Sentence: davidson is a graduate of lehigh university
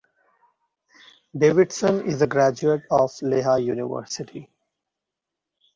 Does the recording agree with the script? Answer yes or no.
yes